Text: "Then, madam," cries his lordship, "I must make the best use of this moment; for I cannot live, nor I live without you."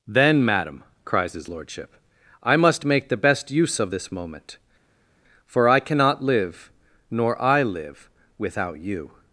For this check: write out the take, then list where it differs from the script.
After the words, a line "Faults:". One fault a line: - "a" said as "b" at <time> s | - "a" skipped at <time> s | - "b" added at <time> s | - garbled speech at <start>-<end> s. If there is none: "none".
"Then, madam," cries his lordship, "I must make the best use of this moment; for I cannot live, nor I live without you."
Faults:
none